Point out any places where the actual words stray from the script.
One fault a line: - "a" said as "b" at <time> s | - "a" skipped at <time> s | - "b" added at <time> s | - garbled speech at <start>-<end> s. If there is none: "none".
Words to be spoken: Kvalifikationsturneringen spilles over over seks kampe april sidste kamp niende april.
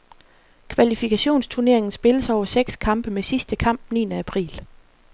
- "over" skipped at 2.5 s
- "april" said as "med" at 3.1 s